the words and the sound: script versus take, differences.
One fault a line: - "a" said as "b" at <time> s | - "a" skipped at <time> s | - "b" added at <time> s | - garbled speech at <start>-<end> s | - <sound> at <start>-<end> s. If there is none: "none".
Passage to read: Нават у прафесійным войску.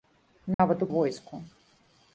- dropout at 0.5-0.6 s
- "прафесійным" skipped at 0.9 s